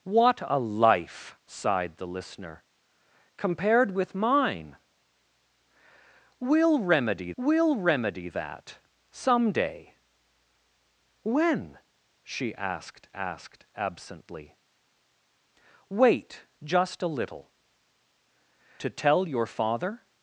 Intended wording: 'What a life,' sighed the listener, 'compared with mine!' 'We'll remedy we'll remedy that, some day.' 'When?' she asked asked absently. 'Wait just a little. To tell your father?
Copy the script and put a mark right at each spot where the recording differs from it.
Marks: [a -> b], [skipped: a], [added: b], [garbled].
'What a life,' sighed the listener, 'compared with mine!' 'We'll remedy we'll remedy that, some day.' 'When?' she asked asked absently. 'Wait just a little. To tell your father?